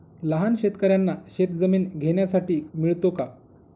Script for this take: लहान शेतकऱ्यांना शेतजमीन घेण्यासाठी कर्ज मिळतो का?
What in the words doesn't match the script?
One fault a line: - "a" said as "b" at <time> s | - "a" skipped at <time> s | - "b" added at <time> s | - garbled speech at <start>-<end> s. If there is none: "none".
- "कर्ज" skipped at 2.6 s